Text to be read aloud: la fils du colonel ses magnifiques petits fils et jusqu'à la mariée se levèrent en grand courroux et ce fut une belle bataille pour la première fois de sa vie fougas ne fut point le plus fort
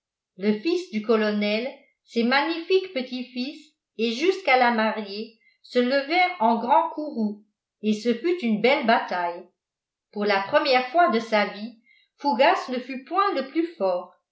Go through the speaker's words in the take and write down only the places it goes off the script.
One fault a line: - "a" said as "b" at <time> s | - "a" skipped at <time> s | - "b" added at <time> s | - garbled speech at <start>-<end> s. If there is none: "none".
- "la" said as "le" at 0.4 s